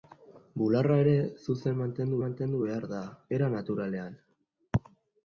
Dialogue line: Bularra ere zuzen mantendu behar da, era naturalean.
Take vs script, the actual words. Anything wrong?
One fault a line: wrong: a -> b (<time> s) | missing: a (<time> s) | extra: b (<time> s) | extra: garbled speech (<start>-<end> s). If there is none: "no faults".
extra: mantendu (2.2 s)